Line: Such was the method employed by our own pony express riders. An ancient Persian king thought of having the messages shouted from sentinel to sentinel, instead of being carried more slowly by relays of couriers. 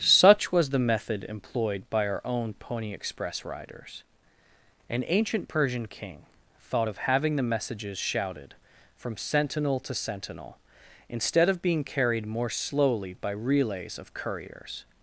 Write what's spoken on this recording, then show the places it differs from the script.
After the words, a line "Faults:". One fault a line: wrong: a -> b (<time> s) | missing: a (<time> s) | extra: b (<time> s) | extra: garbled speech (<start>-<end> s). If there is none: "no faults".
Such was the method employed by our own pony express riders. An ancient Persian king thought of having the messages shouted from sentinel to sentinel, instead of being carried more slowly by relays of couriers.
Faults:
no faults